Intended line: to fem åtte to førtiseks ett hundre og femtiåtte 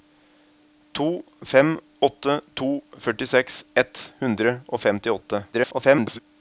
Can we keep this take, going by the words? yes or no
no